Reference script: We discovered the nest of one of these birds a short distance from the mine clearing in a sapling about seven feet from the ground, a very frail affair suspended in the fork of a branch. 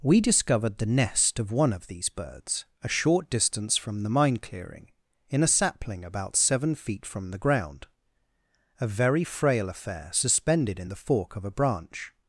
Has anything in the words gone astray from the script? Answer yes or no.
no